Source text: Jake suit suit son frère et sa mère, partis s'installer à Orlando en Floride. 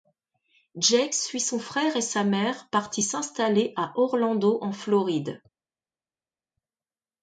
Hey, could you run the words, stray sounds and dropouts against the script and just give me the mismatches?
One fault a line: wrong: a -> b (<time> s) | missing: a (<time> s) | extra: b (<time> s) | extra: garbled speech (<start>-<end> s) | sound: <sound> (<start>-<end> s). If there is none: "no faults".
missing: suit (1.4 s)